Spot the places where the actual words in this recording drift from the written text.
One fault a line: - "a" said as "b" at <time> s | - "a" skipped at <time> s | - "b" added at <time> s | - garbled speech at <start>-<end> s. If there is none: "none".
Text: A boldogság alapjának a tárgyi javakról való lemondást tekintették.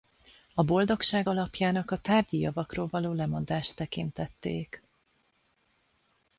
none